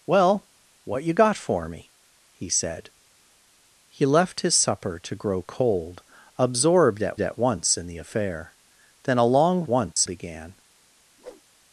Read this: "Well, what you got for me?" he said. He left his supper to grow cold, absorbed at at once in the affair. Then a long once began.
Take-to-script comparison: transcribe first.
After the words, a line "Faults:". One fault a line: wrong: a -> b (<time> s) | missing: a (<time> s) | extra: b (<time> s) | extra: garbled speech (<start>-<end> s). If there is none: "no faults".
"Well, what you got for me?" he said. He left his supper to grow cold, absorbed at at once in the affair. Then a long once began.
Faults:
no faults